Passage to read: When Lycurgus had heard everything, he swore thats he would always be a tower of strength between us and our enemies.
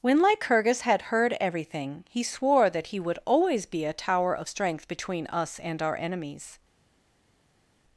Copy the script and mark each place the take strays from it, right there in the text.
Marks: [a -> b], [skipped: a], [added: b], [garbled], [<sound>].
When Lycurgus had heard everything, he swore [thats -> that] he would always be a tower of strength between us and our enemies.